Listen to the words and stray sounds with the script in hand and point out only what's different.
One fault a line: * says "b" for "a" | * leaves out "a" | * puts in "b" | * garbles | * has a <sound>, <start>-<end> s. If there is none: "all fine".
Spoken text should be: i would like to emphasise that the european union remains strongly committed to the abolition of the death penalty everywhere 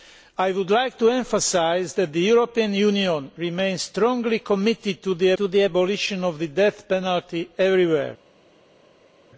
* puts in "to the"